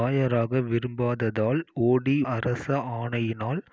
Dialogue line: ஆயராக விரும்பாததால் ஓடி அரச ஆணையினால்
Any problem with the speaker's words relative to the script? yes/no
no